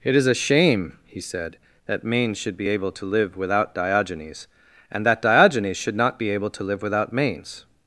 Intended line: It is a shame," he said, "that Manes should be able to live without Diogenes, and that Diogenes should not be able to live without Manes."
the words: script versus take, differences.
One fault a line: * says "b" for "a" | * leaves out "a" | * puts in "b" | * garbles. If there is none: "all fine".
all fine